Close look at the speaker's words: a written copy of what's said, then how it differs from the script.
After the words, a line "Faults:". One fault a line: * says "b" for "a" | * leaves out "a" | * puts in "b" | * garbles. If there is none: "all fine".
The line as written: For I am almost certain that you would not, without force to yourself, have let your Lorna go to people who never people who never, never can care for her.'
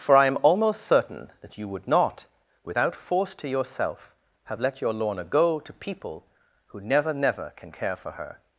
For I am almost certain that you would not, without force to yourself, have let your Lorna go to people who never, never can care for her.'
Faults:
* leaves out "people who never"